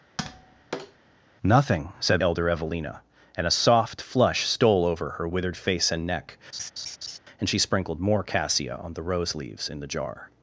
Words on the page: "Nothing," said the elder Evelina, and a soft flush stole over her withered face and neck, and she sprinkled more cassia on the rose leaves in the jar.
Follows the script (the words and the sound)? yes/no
no